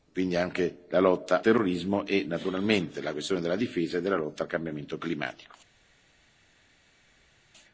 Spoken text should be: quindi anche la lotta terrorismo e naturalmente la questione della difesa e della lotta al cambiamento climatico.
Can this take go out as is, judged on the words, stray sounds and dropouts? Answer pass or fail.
pass